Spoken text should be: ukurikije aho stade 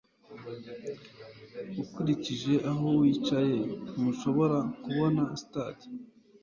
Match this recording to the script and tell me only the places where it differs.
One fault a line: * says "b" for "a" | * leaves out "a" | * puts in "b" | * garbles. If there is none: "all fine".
* puts in "wicaye ntushobora kubona"